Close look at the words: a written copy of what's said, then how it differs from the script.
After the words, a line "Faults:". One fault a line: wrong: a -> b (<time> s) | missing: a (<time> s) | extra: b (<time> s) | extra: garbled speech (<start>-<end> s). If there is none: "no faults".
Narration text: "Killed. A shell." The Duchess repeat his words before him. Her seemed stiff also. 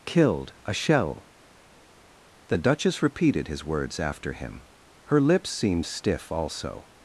"Killed. A shell." The Duchess repeated his words after him. Her lips seemed stiff also.
Faults:
wrong: repeat -> repeated (3.0 s)
wrong: before -> after (4.0 s)
extra: lips (5.2 s)